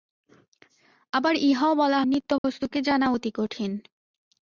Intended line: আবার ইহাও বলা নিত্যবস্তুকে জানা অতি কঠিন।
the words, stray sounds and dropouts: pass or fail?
fail